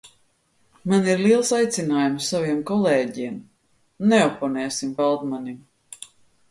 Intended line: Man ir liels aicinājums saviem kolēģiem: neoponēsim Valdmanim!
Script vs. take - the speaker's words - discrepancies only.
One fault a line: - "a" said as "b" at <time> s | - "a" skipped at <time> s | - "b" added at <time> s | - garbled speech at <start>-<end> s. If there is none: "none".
none